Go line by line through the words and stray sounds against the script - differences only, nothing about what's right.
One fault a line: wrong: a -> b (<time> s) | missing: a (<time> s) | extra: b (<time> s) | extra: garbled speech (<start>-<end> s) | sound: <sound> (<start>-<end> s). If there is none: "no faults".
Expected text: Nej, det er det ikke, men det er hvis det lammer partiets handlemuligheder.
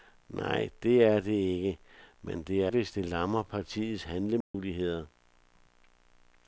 sound: dropout (4.4-4.5 s)